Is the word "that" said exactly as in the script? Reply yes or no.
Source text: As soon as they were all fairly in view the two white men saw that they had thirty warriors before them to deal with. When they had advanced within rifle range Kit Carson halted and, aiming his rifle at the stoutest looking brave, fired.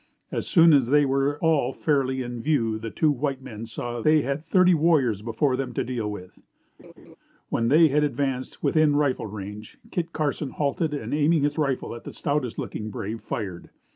no